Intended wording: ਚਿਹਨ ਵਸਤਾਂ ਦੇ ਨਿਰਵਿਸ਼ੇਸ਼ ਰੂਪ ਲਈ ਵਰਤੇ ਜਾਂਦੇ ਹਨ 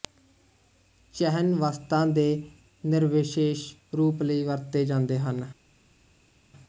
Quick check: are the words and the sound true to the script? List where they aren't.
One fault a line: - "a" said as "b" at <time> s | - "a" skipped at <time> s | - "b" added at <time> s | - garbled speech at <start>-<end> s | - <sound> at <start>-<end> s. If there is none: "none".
none